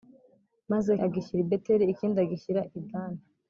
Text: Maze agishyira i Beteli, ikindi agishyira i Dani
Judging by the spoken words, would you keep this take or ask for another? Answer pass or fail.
pass